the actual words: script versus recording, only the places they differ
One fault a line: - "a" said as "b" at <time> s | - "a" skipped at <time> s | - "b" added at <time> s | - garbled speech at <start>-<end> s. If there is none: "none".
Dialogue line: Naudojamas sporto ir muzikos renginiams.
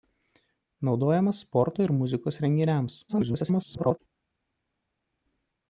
- garbled speech at 3.1-4.0 s